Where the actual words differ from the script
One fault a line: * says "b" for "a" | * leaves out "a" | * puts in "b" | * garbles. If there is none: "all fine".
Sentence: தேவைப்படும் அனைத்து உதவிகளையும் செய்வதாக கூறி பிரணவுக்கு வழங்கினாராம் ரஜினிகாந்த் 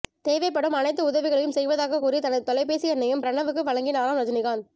* puts in "தனது தொலைபேசி எண்ணையும்"